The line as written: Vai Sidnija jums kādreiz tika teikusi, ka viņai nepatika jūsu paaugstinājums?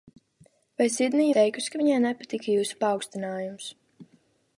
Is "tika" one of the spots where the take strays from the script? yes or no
yes